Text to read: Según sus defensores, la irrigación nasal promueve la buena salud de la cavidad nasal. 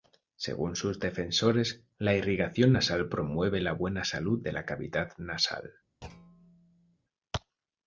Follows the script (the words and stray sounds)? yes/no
no